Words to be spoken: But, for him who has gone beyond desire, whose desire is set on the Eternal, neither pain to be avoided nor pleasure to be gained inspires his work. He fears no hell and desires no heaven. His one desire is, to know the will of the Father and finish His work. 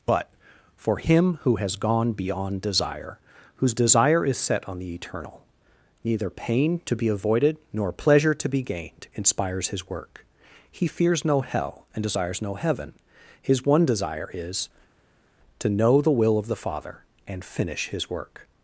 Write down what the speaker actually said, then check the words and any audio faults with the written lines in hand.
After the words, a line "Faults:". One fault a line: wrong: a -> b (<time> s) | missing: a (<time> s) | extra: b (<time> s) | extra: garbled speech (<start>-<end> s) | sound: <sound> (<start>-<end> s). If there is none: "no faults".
But, for him who has gone beyond desire, whose desire is set on the Eternal, neither pain to be avoided nor pleasure to be gained inspires his work. He fears no hell and desires no heaven. His one desire is, to know the will of the Father and finish His work.
Faults:
no faults